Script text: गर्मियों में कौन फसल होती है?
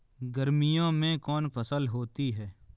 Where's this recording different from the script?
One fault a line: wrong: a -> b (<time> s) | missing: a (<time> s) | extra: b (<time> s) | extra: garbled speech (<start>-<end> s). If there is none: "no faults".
no faults